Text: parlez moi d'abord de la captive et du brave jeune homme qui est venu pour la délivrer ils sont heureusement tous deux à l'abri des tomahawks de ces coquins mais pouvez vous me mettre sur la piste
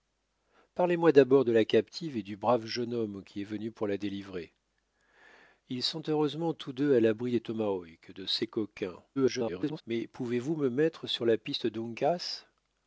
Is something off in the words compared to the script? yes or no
yes